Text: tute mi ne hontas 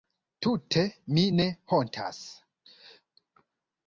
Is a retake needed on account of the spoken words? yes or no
no